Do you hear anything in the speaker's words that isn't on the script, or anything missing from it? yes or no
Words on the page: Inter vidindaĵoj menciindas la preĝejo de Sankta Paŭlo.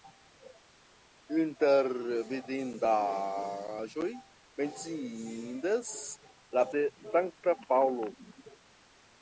yes